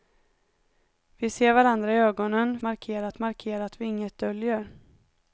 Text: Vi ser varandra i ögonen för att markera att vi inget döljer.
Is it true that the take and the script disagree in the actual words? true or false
true